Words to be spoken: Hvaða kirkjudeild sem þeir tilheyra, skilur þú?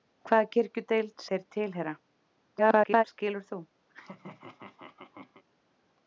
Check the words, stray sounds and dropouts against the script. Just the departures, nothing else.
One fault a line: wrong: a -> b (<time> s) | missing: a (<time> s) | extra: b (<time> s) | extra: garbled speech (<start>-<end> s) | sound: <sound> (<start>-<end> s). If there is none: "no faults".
missing: sem (1.2 s)
extra: garbled speech (2.5-3.0 s)
sound: laugh (3.9-5.4 s)